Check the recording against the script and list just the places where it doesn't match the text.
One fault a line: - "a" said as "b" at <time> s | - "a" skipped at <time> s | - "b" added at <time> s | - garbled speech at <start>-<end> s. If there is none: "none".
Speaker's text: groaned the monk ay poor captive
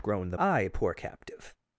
- "monk" skipped at 0.4 s